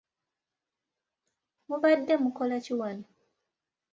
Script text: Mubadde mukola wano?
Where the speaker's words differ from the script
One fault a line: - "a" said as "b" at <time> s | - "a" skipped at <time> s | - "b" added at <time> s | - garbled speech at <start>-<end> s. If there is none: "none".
- "ki" added at 2.6 s